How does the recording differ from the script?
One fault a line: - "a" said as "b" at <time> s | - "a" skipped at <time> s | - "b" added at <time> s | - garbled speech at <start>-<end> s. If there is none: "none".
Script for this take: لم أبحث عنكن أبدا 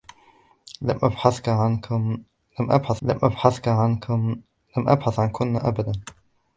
- "لم أبحث" added at 3.0 s